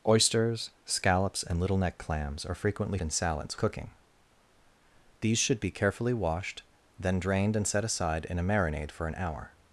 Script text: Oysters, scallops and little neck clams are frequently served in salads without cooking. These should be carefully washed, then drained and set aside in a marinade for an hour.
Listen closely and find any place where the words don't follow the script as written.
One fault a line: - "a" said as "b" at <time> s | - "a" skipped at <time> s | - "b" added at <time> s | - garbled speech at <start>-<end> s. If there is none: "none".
- "served" skipped at 3.0 s
- "without" skipped at 3.6 s